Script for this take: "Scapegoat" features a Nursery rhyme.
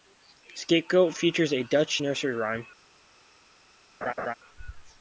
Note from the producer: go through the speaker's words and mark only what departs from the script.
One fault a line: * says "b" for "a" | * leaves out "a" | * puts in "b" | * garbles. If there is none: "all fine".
* puts in "Dutch"